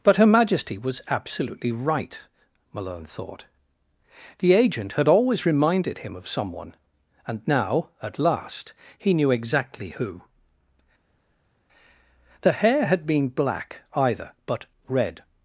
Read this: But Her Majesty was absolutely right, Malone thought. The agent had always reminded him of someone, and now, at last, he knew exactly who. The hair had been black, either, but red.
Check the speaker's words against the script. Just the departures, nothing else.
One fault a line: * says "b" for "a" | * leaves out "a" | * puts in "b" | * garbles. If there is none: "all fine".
all fine